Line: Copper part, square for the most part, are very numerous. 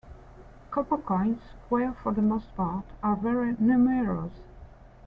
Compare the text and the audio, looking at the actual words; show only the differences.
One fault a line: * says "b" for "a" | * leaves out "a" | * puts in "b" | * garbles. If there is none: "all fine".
* says "coins" for "part"